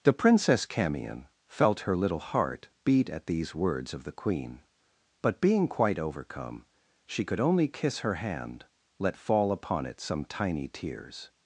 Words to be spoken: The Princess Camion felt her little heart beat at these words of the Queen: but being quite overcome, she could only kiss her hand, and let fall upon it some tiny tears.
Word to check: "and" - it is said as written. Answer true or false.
false